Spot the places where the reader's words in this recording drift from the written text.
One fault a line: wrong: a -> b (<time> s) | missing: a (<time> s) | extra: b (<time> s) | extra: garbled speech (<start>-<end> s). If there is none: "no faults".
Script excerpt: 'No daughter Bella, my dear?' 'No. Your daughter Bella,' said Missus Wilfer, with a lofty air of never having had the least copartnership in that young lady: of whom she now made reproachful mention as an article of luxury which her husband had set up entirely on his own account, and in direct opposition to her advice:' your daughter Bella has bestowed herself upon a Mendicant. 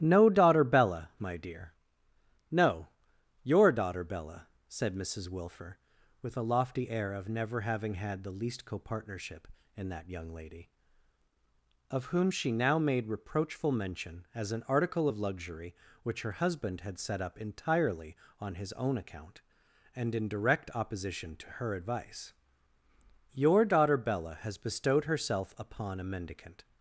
no faults